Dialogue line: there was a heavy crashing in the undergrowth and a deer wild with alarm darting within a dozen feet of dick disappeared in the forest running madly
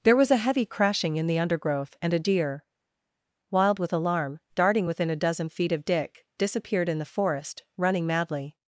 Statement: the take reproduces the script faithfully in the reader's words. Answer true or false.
true